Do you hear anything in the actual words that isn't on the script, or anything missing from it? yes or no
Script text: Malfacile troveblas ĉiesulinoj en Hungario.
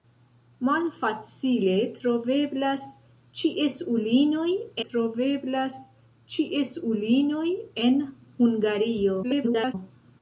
yes